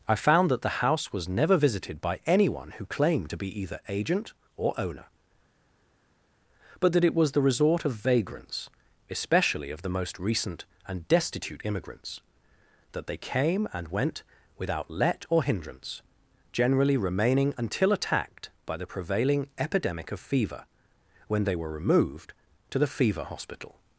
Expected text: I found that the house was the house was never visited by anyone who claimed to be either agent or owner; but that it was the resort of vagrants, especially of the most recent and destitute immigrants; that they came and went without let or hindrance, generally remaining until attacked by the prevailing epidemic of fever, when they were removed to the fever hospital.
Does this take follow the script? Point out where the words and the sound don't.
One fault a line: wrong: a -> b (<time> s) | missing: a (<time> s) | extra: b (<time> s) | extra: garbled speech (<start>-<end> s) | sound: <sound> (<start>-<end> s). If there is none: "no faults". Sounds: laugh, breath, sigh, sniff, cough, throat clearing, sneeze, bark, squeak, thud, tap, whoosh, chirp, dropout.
missing: the house was (1.3 s)